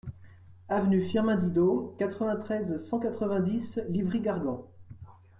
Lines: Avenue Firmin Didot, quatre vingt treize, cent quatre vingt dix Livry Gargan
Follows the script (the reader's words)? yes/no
yes